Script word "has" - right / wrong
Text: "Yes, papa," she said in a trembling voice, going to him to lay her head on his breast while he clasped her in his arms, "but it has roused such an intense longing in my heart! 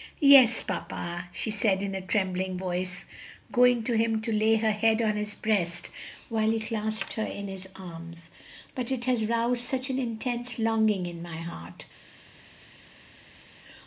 right